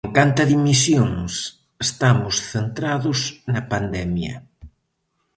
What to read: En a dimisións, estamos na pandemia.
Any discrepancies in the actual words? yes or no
yes